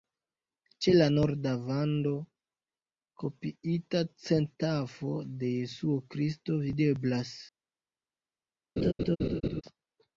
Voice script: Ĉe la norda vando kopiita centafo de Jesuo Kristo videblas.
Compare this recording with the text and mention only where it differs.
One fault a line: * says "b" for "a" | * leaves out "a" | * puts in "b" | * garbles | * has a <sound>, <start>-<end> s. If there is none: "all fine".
* has a laugh, 8.8-9.6 s